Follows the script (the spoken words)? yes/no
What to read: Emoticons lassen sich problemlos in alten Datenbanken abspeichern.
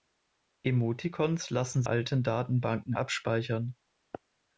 no